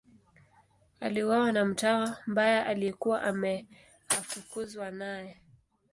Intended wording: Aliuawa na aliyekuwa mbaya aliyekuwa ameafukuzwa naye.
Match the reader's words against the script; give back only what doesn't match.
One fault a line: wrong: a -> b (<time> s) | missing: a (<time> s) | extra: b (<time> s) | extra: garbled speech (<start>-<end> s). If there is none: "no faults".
wrong: aliyekuwa -> mtawa (1.6 s)